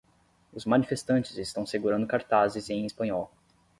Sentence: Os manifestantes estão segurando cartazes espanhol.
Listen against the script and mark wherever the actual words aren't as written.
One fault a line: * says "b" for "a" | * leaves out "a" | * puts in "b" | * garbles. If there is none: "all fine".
* puts in "em"